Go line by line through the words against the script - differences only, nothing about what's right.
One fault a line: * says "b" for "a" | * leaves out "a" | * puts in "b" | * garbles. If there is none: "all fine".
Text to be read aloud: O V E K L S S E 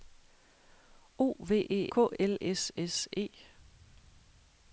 all fine